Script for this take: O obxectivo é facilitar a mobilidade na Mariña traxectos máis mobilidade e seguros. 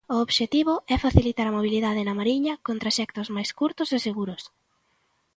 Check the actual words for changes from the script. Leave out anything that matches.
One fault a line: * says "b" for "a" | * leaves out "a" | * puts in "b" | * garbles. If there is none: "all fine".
* puts in "con"
* says "curtos" for "mobilidade"